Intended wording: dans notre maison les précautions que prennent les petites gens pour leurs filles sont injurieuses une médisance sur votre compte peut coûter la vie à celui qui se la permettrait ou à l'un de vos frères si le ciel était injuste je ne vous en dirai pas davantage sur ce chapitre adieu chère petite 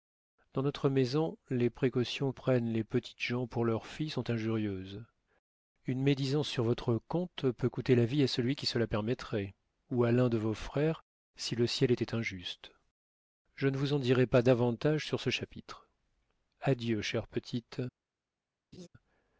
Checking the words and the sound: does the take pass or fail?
fail